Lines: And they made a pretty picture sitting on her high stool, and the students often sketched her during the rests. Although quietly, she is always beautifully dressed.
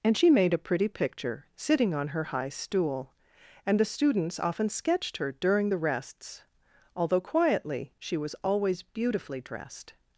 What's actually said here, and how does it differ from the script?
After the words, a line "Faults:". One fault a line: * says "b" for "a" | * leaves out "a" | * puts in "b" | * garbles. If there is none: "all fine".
And she made a pretty picture sitting on her high stool, and the students often sketched her during the rests. Although quietly, she was always beautifully dressed.
Faults:
* says "she" for "they"
* says "was" for "is"